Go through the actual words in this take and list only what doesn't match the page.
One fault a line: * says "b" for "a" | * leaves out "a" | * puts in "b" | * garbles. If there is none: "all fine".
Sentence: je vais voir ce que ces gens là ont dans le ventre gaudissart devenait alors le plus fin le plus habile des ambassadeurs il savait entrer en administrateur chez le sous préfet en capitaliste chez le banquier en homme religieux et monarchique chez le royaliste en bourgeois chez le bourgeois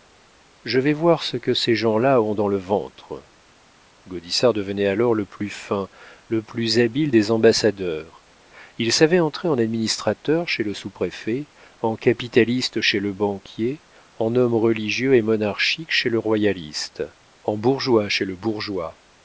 all fine